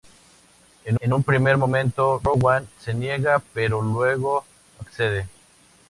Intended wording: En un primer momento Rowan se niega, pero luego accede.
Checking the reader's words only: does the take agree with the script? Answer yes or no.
no